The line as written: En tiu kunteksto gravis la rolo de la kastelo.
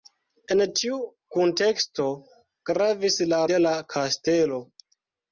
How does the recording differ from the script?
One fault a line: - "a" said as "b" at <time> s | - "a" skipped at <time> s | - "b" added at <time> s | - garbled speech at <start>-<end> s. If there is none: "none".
- "rolo" skipped at 3.4 s